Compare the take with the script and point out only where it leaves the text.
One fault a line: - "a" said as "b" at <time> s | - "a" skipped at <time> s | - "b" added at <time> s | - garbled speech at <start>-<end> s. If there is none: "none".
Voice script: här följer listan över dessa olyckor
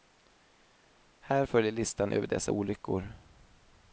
none